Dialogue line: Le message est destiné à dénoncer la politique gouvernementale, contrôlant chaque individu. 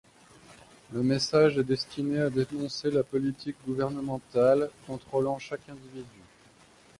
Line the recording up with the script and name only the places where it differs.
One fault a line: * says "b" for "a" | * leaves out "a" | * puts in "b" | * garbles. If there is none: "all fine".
all fine